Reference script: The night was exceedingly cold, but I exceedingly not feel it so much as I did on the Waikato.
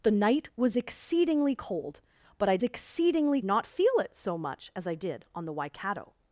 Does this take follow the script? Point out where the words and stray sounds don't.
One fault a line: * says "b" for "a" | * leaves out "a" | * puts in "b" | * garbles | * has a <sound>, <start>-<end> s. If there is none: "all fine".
all fine